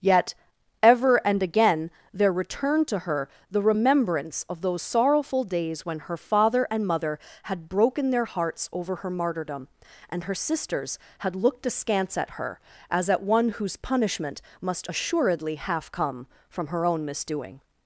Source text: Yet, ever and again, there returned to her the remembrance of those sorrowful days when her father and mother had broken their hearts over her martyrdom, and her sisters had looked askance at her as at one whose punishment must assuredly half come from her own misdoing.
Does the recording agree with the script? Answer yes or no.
yes